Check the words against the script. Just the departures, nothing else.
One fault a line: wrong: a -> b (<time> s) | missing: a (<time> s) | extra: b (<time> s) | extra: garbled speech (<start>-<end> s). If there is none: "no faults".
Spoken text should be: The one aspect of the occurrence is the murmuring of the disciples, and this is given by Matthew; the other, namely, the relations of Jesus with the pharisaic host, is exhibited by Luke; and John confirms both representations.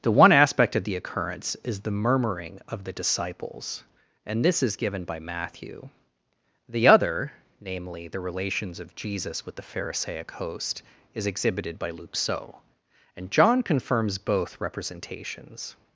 extra: so (12.2 s)